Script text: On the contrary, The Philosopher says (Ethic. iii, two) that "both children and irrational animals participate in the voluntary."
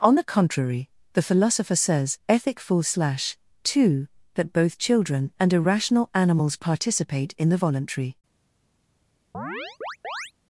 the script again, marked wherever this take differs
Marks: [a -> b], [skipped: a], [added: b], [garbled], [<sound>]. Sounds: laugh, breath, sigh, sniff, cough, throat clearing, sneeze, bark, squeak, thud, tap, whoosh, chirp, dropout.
On the contrary, The Philosopher says (Ethic. [iii, -> full slash] two) that "both children and irrational animals participate in the voluntary." [chirp]